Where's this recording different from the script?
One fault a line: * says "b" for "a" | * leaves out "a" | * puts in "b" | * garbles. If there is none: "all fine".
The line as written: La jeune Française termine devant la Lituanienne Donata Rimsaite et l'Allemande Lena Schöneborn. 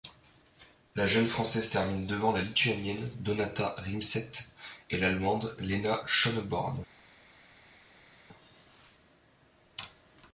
all fine